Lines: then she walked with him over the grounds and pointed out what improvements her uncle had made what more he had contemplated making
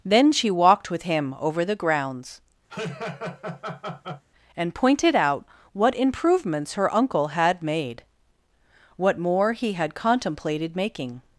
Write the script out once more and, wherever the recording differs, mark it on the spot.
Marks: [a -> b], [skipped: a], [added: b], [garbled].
then she walked with him over the grounds and pointed out what improvements her uncle had made what more he had contemplated making